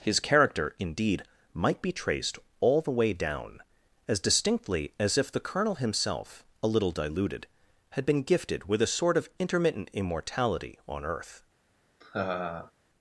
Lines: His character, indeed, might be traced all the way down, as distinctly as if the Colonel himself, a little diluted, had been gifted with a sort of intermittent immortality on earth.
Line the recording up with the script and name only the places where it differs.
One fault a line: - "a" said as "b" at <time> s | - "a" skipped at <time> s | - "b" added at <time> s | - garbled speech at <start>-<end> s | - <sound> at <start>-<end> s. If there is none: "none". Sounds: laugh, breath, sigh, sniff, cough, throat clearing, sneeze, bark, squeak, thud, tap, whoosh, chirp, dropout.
- laugh at 12.0-12.7 s